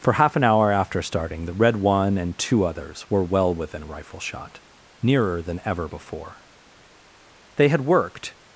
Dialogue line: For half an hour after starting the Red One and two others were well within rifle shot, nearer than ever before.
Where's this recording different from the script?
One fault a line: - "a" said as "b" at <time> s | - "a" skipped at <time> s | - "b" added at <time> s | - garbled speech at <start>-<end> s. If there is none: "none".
- "They had worked" added at 7.5 s